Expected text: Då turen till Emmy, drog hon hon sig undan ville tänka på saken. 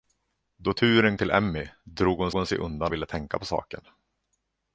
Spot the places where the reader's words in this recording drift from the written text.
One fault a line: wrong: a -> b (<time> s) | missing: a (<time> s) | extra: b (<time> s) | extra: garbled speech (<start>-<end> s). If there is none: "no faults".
no faults